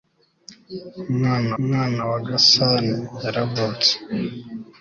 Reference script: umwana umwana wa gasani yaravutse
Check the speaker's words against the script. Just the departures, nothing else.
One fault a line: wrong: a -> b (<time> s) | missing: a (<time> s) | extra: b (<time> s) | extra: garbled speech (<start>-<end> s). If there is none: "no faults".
no faults